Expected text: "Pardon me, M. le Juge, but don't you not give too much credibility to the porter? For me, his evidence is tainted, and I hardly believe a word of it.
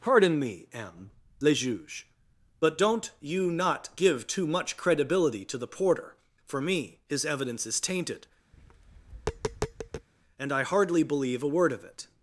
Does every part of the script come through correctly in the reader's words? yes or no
yes